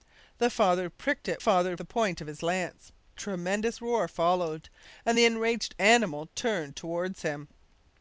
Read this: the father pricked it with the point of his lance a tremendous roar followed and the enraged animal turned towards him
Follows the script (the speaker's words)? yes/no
no